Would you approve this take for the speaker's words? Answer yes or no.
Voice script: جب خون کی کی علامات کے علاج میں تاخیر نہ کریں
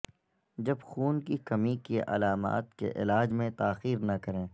no